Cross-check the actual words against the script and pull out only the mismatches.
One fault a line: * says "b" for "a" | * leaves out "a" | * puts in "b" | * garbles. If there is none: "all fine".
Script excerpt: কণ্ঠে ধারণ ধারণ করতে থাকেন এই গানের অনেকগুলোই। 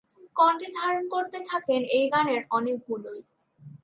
* leaves out "ধারণ"